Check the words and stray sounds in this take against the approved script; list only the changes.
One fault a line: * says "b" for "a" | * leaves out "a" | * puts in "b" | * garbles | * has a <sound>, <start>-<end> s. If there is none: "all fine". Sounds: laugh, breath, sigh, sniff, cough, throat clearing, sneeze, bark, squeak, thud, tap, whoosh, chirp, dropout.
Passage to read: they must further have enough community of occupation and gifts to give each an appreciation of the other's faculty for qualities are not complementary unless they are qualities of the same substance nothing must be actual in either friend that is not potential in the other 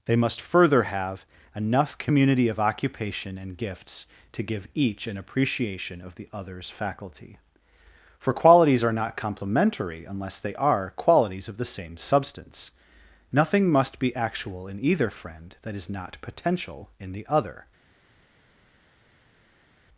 all fine